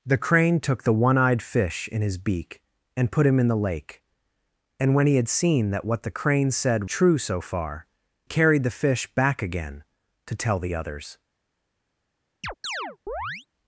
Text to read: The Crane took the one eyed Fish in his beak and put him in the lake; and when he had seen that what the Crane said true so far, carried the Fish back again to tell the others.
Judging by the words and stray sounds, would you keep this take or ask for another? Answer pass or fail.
fail